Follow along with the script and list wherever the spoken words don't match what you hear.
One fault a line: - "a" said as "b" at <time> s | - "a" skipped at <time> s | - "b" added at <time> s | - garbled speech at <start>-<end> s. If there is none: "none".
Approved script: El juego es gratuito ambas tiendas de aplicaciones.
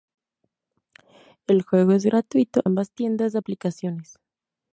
none